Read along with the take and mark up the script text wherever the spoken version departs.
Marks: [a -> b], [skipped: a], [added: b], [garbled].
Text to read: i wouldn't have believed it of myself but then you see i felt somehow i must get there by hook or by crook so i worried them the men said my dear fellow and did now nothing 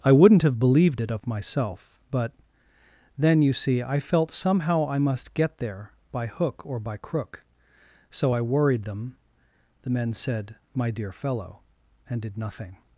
i wouldn't have believed it of myself but then you see i felt somehow i must get there by hook or by crook so i worried them the men said my dear fellow and did [skipped: now] nothing